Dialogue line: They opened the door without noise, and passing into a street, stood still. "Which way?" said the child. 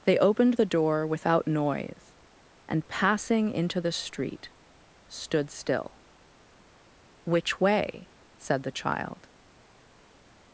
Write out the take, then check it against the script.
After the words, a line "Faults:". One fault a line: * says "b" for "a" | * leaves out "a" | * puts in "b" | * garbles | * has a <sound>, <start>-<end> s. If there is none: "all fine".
They opened the door without noise, and passing into the street, stood still. "Which way?" said the child.
Faults:
* says "the" for "a"